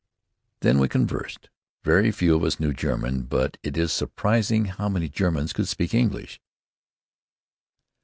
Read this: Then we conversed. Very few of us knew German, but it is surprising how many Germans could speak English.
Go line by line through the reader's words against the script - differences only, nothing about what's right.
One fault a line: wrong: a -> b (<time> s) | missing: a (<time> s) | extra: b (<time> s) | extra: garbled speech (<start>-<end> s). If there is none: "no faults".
no faults